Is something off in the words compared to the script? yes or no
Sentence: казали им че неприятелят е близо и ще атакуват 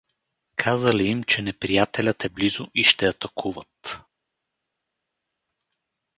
no